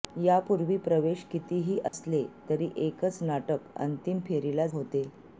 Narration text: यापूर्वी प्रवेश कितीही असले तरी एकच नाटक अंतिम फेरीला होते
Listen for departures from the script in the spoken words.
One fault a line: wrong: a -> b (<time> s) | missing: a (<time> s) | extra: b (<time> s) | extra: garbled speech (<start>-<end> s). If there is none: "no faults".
no faults